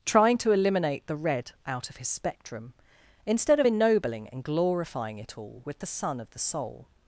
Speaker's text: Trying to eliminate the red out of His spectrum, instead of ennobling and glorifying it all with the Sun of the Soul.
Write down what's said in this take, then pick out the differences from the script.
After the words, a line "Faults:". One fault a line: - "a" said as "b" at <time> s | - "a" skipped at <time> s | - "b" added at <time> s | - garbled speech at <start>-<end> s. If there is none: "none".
Trying to eliminate the red out of His spectrum, instead of ennobling and glorifying it all with the Sun of the Soul.
Faults:
none